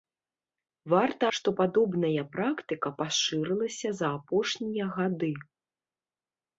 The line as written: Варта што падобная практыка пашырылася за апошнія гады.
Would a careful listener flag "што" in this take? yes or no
no